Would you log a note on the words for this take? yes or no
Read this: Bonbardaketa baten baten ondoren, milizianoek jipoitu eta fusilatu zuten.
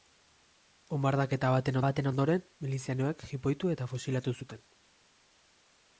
no